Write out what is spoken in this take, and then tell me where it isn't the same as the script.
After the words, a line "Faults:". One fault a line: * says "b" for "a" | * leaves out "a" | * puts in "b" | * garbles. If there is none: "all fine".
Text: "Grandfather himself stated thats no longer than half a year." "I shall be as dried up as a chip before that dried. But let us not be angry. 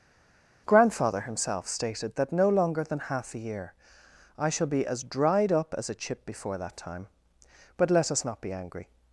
"Grandfather himself stated that no longer than half a year." "I shall be as dried up as a chip before that time. But let us not be angry.
Faults:
* says "that" for "thats"
* says "time" for "dried"